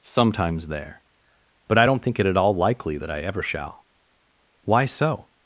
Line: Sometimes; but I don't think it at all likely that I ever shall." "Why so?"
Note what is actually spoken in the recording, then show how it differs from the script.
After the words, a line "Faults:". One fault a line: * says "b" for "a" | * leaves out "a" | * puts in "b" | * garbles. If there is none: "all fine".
Sometimes; there but I don't think it at all likely that I ever shall." "Why so?"
Faults:
* puts in "there"